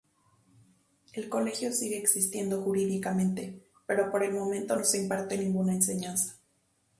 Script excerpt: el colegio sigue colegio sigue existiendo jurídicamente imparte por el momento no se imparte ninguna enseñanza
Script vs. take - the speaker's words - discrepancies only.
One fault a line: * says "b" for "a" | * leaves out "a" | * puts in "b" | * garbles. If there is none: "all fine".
* leaves out "colegio sigue"
* says "pero" for "imparte"